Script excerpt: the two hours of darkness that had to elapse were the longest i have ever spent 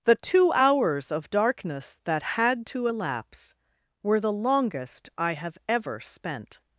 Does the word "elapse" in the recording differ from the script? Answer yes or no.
no